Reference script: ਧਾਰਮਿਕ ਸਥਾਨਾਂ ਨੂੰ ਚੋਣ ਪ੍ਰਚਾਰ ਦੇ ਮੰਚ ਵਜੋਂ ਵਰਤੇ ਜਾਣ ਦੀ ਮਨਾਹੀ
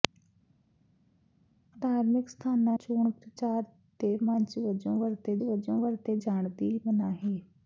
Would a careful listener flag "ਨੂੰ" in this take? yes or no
yes